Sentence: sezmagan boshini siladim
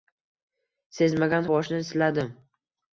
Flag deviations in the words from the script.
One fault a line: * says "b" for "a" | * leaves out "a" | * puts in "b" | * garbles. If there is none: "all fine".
all fine